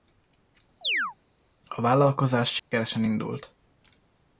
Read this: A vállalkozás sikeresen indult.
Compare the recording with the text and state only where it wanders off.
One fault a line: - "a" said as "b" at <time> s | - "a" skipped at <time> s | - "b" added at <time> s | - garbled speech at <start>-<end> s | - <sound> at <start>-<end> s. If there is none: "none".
- chirp at 0.8-1.1 s
- dropout at 2.6-2.7 s